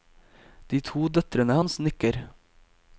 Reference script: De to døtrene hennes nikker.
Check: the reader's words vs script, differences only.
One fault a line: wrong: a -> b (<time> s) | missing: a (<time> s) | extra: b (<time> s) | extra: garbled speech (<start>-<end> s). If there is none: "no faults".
wrong: hennes -> hans (1.6 s)